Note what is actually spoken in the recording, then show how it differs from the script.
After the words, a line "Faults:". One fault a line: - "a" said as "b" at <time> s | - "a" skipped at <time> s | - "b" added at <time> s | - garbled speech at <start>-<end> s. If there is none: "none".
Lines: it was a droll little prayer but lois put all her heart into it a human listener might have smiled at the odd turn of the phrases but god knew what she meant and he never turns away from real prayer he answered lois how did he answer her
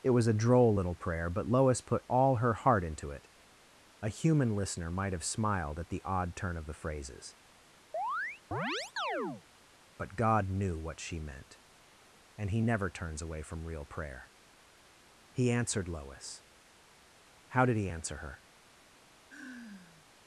it was a droll little prayer but lois put all her heart into it a human listener might have smiled at the odd turn of the phrases but god knew what she meant and he never turns away from real prayer he answered lois how did he answer her
Faults:
none